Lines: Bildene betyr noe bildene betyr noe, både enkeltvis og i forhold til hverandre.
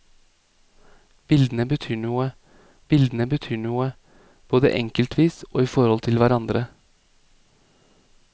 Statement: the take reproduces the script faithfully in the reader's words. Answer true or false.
true